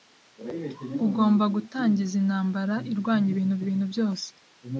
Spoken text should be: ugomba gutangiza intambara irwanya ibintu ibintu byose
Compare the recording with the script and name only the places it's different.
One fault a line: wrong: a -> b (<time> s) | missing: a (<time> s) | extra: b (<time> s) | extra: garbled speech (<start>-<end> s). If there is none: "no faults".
no faults